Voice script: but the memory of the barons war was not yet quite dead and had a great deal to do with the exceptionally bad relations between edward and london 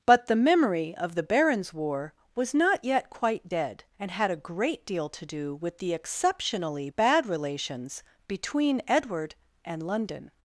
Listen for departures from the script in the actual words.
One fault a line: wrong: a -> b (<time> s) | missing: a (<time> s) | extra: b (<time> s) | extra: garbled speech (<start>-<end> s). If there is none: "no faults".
no faults